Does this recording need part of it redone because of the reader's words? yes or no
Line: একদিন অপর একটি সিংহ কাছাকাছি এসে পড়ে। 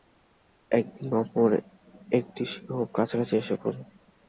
no